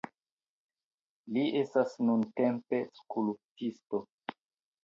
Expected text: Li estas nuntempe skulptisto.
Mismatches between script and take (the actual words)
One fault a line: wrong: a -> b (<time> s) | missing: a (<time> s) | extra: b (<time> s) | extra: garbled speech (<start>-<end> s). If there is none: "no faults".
no faults